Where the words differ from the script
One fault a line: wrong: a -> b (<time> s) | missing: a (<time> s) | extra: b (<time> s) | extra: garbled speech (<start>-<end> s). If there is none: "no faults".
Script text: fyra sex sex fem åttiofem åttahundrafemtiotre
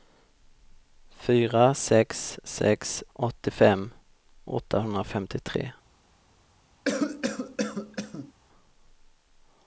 missing: fem (3.0 s)